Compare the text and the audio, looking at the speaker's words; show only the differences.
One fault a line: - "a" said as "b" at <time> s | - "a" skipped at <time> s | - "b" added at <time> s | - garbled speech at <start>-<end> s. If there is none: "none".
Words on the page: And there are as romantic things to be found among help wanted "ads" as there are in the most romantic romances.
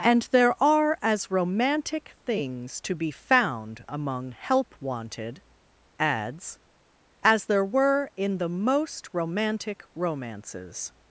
- "are" said as "were" at 7.6 s